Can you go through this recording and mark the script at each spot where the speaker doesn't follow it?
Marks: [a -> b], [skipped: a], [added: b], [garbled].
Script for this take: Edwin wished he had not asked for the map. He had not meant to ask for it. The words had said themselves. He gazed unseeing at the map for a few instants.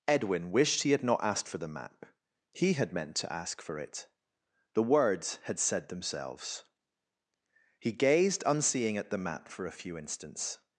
Edwin wished he had not asked for the map. He had [skipped: not] meant to ask for it. The words had said themselves. He gazed unseeing at the map for a few instants.